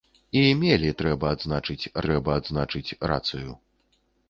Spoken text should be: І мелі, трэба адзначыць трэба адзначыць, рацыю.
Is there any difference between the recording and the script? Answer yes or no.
no